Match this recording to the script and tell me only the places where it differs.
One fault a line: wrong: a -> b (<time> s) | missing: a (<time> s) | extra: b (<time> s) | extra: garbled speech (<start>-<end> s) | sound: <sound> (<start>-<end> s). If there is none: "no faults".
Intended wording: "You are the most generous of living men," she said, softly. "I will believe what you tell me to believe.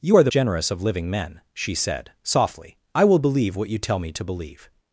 missing: most (0.3 s)